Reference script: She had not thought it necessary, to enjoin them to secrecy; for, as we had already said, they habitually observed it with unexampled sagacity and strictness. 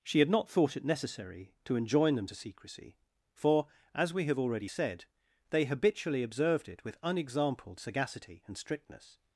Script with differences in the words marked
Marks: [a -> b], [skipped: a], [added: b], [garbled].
She had not thought it necessary, to enjoin them to secrecy; for, as we [had -> have] already said, they habitually observed it with unexampled sagacity and strictness.